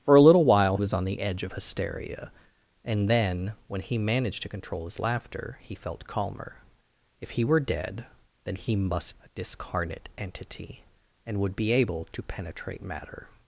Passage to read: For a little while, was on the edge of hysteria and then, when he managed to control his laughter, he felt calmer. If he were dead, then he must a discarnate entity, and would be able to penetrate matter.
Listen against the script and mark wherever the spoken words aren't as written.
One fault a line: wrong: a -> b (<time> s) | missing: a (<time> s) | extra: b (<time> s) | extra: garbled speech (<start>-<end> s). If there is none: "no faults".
no faults